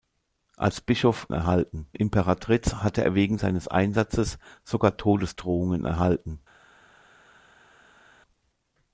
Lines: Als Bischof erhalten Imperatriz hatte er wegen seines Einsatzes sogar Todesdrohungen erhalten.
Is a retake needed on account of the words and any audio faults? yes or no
no